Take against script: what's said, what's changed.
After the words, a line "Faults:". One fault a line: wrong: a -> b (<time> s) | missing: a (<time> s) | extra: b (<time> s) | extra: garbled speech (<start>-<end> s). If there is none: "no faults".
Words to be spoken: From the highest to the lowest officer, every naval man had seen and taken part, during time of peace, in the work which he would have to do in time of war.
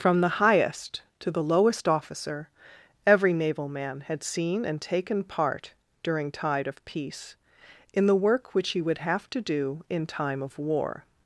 From the highest to the lowest officer, every naval man had seen and taken part, during tide of peace, in the work which he would have to do in time of war.
Faults:
wrong: time -> tide (6.3 s)